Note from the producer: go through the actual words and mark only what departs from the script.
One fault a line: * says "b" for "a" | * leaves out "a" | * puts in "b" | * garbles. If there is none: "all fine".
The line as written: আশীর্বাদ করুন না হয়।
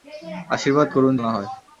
all fine